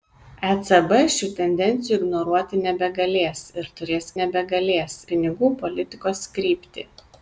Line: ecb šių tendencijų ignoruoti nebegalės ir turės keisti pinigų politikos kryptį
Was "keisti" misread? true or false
true